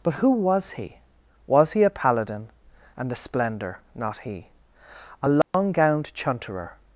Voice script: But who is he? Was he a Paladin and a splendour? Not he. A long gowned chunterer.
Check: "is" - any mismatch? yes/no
yes